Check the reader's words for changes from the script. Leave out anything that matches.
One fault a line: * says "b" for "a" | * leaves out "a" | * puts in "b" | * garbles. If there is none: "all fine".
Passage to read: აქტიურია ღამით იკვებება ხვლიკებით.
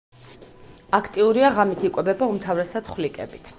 * puts in "უმთავრესად"